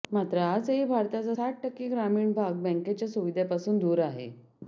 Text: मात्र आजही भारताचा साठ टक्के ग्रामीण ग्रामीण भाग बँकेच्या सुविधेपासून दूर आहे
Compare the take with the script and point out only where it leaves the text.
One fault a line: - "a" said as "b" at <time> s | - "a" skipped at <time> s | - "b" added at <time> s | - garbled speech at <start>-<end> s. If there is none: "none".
- "ग्रामीण" skipped at 2.3 s